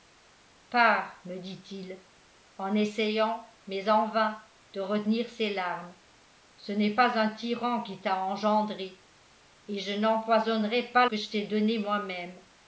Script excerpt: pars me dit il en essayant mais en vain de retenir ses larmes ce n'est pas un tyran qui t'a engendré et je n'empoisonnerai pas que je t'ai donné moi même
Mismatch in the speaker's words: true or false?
false